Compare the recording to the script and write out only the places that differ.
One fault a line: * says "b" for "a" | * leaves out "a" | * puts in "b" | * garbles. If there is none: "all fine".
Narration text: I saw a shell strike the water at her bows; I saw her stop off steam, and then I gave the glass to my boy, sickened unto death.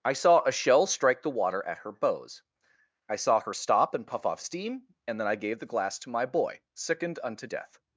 * puts in "and puff"